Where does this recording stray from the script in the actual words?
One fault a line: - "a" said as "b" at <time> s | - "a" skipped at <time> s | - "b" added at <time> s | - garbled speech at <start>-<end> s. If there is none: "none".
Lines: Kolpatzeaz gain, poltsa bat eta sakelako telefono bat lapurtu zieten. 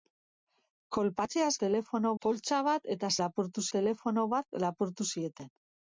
- "gain" said as "telefono" at 1.7 s
- "sakelako" said as "lapurtu" at 3.2 s